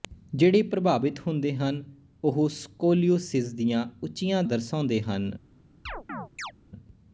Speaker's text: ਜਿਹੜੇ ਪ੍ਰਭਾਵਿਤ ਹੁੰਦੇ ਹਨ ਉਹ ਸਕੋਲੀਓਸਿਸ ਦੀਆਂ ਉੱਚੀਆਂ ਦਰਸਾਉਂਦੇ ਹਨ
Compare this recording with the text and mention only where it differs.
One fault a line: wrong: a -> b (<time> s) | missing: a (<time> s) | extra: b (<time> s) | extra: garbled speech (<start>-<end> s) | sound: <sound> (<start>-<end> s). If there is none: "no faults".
sound: chirp (5.9-6.5 s)